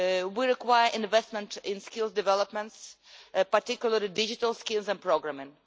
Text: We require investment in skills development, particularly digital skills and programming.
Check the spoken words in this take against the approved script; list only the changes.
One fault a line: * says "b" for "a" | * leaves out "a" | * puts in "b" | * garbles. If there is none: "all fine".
all fine